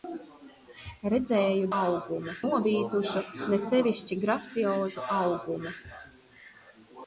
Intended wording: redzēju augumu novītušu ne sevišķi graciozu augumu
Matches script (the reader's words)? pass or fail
pass